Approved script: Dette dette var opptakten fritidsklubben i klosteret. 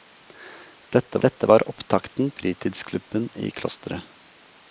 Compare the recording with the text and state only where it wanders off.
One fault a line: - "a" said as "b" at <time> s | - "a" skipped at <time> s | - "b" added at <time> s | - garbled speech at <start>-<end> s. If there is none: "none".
none